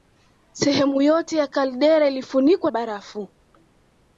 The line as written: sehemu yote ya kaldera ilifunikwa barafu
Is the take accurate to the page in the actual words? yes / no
yes